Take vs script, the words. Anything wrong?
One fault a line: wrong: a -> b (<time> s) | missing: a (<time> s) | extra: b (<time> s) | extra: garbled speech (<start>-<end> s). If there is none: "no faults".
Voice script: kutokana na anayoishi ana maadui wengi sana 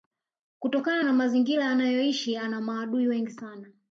extra: mazingira (1.1 s)